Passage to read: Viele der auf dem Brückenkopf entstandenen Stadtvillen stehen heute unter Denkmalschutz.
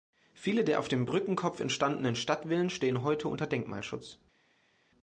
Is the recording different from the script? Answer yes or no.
no